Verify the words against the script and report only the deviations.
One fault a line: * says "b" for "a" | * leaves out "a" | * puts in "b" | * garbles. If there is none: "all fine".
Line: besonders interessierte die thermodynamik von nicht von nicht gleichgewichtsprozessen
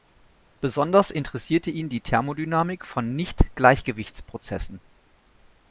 * puts in "ihn"
* leaves out "von nicht"